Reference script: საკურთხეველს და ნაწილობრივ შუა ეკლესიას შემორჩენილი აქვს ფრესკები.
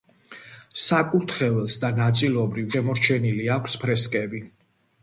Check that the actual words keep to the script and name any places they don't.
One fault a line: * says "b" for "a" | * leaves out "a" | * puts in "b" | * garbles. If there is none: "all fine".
* leaves out "შუა ეკლესიას"